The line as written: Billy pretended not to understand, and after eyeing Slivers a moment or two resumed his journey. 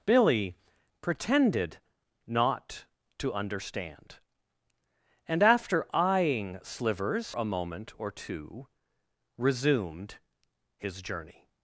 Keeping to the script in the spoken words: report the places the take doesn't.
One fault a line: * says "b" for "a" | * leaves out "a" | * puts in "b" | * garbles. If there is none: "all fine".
all fine